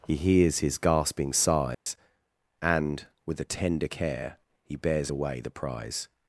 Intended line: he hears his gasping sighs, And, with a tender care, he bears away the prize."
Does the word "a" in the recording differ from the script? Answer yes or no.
no